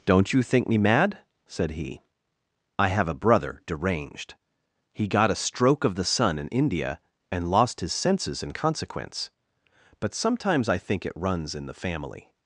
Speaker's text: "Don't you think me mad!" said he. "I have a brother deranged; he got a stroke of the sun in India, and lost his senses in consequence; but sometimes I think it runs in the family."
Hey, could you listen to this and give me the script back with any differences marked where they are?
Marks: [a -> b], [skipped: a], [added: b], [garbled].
"Don't you think me mad!" said he. "I have a brother deranged; he got a stroke of the sun in India, and lost his senses in consequence; but sometimes I think it runs in the family."